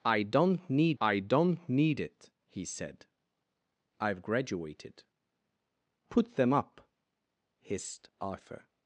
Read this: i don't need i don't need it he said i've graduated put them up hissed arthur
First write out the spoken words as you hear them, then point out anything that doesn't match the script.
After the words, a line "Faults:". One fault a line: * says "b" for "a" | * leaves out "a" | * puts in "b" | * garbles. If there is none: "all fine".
i don't need i don't need it he said i've graduated put them up hissed arthur
Faults:
all fine